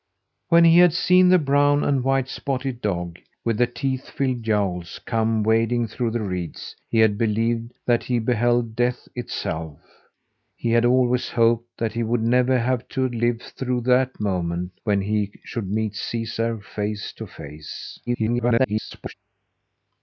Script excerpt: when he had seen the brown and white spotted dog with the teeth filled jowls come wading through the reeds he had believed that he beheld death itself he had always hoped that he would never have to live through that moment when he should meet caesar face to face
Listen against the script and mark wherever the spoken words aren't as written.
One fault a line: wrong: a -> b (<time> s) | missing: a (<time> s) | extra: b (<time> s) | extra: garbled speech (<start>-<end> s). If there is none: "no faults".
extra: garbled speech (18.1-19.1 s)